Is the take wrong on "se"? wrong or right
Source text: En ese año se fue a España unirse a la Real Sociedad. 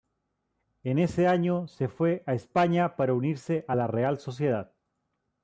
right